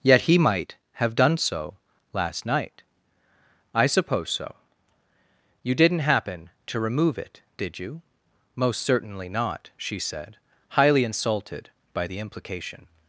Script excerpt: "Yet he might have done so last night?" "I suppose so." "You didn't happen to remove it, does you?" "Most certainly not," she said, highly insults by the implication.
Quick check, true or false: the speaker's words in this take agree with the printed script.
false